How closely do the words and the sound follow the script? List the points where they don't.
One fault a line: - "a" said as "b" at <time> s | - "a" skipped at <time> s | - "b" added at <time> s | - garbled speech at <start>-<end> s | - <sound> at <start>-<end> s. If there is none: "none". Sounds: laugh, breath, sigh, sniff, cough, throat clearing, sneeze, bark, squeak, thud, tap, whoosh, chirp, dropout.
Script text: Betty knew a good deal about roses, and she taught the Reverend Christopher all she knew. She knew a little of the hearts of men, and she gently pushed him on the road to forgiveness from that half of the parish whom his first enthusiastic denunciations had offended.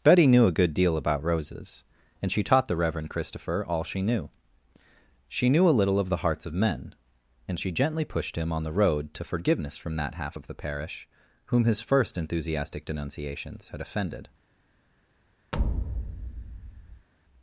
- thud at 15.5-17.1 s